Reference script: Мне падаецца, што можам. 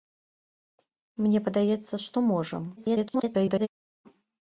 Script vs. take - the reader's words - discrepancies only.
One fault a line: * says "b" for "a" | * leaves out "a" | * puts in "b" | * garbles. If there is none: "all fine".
* garbles